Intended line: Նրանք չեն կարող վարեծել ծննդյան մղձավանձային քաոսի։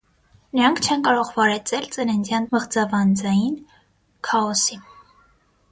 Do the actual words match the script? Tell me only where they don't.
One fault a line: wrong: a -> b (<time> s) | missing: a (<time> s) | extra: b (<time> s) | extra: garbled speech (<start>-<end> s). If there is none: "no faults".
no faults